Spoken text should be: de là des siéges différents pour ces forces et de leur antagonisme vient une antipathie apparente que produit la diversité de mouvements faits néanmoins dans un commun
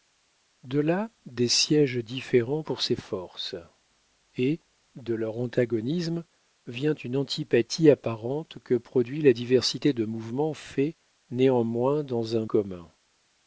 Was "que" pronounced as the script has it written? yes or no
yes